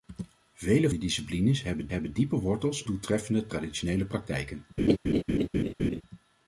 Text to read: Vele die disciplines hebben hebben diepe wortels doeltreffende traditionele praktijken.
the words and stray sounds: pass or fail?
fail